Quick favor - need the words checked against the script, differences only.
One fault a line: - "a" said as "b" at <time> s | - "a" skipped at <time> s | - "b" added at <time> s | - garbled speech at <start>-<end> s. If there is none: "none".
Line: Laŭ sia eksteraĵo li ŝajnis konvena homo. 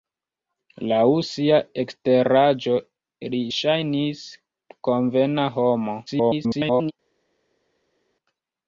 - garbled speech at 6.1-6.9 s